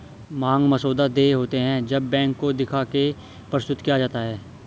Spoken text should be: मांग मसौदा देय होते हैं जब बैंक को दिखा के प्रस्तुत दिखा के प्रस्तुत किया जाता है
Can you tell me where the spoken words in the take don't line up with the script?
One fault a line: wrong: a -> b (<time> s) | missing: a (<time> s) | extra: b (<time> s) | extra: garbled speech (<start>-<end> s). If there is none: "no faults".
missing: दिखा के प्रस्तुत (3.8 s)